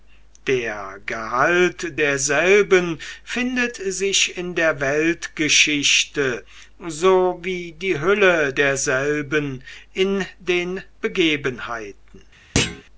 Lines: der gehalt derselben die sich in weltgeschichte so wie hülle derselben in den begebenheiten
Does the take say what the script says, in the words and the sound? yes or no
no